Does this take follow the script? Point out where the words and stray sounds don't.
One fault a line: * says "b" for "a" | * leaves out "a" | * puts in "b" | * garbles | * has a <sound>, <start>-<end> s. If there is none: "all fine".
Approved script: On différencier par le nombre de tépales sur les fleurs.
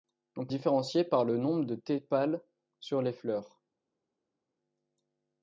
all fine